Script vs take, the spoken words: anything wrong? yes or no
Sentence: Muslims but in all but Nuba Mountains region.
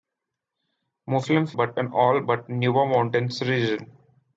no